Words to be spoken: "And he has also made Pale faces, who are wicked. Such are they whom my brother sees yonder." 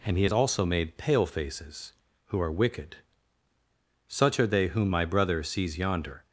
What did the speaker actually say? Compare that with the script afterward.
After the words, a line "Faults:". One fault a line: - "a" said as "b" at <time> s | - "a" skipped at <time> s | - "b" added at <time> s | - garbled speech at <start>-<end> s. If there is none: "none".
"And he has also made Pale faces, who are wicked. Such are they whom my brother sees yonder."
Faults:
none